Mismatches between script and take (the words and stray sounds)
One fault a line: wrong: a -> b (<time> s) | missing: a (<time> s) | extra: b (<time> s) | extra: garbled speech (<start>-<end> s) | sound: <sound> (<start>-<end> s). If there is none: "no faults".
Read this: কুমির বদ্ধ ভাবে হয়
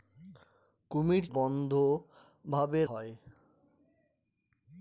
no faults